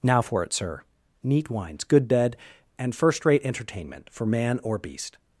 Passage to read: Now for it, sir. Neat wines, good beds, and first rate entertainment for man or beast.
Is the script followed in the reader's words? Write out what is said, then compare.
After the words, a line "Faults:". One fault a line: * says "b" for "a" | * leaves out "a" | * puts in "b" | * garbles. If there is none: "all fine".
Now for it, sir. Neat wines, good bed, and first rate entertainment for man or beast.
Faults:
* says "bed" for "beds"